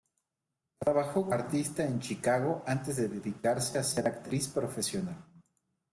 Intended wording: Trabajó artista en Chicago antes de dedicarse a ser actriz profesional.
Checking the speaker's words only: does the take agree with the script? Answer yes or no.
yes